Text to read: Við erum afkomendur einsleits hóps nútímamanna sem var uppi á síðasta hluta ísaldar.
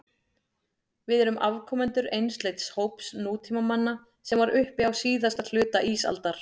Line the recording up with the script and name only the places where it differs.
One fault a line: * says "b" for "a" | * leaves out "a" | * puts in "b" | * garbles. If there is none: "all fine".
all fine